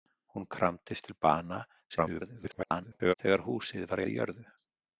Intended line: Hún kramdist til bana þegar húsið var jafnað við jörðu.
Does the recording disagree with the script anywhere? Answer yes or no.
yes